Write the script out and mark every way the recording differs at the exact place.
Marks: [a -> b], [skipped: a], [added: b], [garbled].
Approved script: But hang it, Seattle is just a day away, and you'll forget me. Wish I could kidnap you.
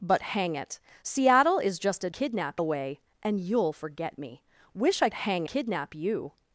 But hang it, Seattle is just a [day -> kidnap] away, and you'll forget me. Wish I [could -> hang] kidnap you.